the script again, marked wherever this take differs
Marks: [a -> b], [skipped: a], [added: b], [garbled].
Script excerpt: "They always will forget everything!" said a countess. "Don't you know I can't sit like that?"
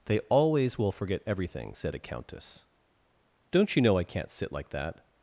"They always will forget everything!" said a countess. "Don't you know I can't sit like that?"